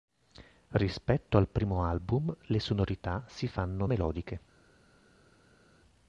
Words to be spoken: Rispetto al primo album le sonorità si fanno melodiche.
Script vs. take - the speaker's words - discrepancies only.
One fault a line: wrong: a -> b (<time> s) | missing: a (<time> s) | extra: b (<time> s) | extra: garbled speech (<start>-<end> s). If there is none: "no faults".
no faults